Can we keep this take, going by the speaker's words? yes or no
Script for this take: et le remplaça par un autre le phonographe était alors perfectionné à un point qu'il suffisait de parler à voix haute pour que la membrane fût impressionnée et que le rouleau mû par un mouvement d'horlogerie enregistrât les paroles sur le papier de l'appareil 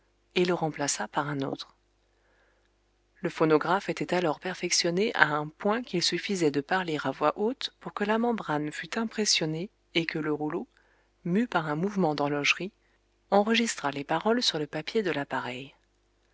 yes